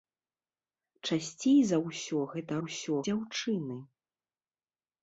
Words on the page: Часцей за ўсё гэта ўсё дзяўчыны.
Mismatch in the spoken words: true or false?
false